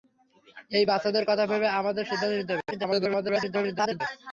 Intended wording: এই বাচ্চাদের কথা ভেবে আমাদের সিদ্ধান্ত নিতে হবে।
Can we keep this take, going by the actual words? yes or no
no